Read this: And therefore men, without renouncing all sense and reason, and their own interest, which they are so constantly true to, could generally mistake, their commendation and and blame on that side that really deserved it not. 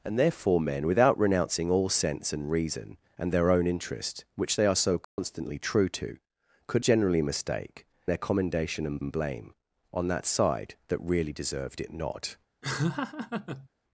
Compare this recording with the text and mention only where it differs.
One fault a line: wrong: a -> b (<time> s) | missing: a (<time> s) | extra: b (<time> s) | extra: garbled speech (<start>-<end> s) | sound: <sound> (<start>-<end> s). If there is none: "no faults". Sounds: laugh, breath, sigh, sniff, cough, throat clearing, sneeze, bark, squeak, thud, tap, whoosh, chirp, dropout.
sound: dropout (5.0-5.2 s)
sound: laugh (12.6-13.7 s)